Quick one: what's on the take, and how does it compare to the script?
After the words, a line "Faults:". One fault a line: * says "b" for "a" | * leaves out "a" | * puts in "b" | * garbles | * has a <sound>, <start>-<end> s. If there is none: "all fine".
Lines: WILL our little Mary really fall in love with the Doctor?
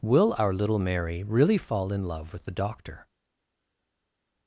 WILL our little Mary really fall in love with the Doctor?
Faults:
all fine